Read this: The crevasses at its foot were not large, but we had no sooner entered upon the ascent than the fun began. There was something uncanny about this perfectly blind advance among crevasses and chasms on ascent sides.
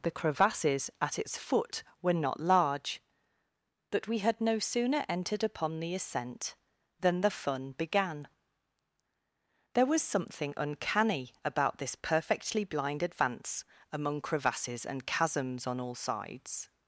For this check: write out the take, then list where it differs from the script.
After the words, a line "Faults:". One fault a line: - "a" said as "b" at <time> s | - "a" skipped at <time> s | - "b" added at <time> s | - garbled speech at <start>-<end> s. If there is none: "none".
The crevasses at its foot were not large, but we had no sooner entered upon the ascent than the fun began. There was something uncanny about this perfectly blind advance among crevasses and chasms on all sides.
Faults:
- "ascent" said as "all" at 15.8 s